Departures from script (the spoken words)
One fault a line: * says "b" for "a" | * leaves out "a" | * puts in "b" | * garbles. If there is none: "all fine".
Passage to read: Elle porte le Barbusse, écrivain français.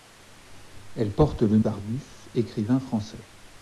all fine